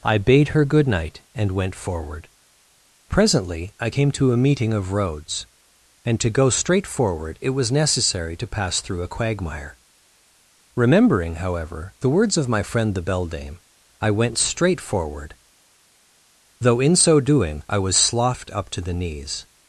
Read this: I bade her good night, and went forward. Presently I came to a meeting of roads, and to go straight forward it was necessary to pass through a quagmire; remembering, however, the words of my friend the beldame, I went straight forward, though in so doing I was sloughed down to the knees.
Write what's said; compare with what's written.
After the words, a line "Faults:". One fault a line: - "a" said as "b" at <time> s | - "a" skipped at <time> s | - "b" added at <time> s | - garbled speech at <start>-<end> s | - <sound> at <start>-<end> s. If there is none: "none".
I bade her good night, and went forward. Presently I came to a meeting of roads, and to go straight forward it was necessary to pass through a quagmire; remembering, however, the words of my friend the beldame, I went straight forward, though in so doing I was sloughed up to the knees.
Faults:
- "down" said as "up" at 18.5 s